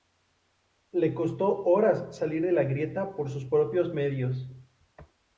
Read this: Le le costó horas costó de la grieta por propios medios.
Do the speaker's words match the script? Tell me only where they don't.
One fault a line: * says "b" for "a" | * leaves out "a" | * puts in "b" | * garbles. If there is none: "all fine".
* leaves out "le"
* says "salir" for "costó"
* puts in "sus"